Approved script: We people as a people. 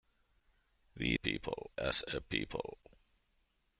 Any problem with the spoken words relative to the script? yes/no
no